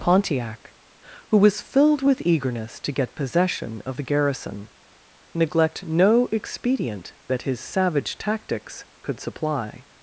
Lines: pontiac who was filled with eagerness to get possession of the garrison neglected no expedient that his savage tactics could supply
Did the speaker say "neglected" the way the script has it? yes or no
no